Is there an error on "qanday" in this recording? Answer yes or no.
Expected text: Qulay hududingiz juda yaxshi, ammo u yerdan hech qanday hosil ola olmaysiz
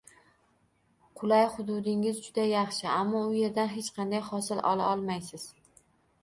no